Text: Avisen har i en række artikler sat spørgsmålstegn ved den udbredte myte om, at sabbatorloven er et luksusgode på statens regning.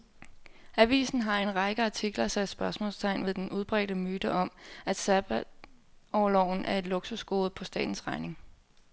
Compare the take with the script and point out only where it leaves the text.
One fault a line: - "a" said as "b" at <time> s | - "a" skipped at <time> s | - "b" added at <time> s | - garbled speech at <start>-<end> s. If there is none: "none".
none